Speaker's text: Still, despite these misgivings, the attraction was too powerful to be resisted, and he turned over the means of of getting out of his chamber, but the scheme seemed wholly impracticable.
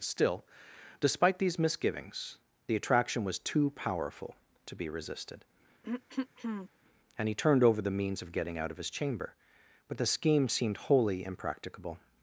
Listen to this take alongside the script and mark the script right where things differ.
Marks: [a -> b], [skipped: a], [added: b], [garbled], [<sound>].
Still, despite these misgivings, the attraction was too powerful to be resisted, [throat clearing] and he turned over the means of [skipped: of] getting out of his chamber, but the scheme seemed wholly impracticable.